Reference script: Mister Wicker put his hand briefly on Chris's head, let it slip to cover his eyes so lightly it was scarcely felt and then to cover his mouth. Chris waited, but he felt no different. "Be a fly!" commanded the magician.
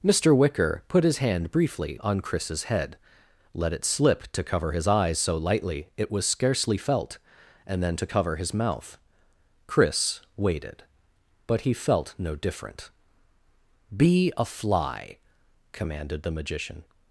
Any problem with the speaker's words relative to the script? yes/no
no